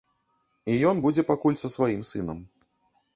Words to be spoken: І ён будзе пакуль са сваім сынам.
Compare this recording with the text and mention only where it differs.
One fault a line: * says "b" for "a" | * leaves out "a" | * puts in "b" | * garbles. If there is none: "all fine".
all fine